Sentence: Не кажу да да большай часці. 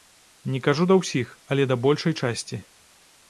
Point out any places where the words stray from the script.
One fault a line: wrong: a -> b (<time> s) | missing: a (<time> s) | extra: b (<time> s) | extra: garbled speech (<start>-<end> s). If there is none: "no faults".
extra: ўсіх але (1.0 s)